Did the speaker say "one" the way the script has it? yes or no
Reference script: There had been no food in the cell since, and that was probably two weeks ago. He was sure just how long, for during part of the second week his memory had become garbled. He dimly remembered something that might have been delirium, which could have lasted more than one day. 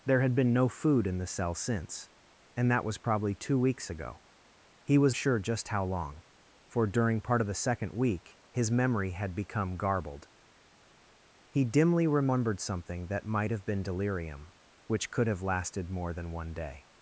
yes